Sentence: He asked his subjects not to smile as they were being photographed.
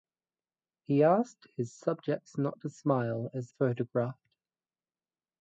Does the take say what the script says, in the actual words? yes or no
no